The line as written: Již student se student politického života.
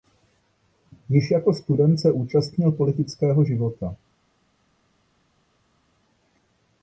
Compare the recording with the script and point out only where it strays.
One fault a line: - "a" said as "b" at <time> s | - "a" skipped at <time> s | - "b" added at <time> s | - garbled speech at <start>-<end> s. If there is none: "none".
- "jako" added at 1.3 s
- "student" said as "účastnil" at 2.1 s